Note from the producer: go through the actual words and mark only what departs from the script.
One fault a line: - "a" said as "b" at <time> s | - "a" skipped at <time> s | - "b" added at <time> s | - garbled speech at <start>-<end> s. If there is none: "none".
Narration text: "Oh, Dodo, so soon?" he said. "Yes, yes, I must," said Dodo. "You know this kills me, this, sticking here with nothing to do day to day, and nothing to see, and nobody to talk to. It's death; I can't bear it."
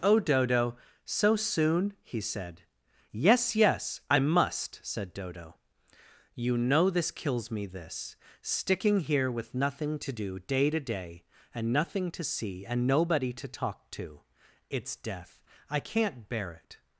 none